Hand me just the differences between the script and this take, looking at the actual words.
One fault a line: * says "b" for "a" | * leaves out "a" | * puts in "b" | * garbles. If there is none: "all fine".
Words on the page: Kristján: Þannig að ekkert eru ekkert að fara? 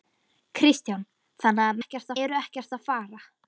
all fine